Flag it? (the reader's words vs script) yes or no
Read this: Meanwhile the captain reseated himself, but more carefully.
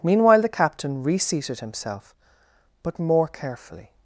no